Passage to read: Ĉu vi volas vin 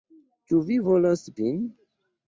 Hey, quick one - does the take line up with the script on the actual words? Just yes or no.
yes